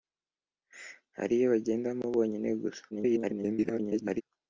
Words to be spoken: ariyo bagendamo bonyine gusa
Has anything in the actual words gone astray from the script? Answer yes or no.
yes